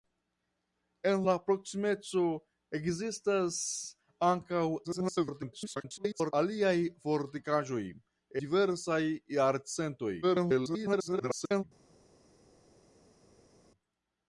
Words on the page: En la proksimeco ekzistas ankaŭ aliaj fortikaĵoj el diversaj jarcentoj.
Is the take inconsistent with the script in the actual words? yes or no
yes